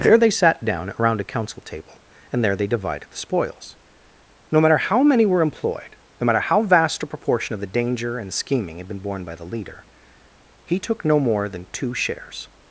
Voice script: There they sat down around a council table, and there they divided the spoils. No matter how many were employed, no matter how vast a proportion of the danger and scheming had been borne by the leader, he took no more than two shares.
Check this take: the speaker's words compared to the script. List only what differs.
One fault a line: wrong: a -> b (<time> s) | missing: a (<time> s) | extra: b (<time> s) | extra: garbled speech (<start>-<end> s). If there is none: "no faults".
no faults